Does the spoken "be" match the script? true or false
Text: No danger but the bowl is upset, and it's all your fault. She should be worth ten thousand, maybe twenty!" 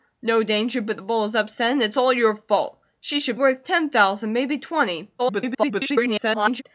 false